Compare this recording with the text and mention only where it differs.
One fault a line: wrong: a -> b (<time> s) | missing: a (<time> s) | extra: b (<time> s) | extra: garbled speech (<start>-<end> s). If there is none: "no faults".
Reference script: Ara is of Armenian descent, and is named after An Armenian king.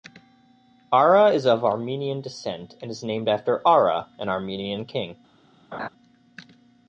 extra: Ara (3.7 s)